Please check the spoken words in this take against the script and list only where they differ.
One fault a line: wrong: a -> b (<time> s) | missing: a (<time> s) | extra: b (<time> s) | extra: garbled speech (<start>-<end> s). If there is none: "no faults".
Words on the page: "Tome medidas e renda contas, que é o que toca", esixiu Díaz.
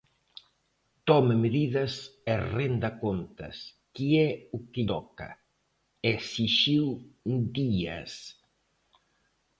no faults